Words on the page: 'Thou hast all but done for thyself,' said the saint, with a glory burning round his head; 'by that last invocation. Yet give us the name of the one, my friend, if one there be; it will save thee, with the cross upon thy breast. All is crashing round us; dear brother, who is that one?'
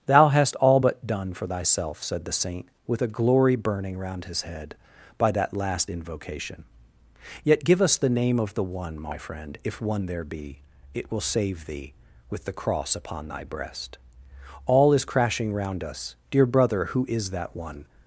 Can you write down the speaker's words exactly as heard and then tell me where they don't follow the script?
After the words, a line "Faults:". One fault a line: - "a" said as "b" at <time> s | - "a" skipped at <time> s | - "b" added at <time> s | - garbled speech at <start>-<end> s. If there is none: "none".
'Thou hast all but done for thyself,' said the saint, with a glory burning round his head; 'by that last invocation. Yet give us the name of the one, my friend, if one there be; it will save thee, with the cross upon thy breast. All is crashing round us; dear brother, who is that one?'
Faults:
none